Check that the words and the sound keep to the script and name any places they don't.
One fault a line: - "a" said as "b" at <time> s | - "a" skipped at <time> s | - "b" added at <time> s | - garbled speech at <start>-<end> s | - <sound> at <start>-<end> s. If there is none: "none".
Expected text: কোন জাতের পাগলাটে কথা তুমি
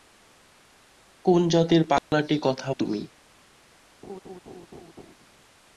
- dropout at 2.0-2.1 s
- laugh at 4.0-5.2 s